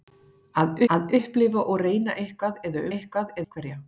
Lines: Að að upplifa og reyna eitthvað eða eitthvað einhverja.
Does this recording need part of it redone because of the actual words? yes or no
no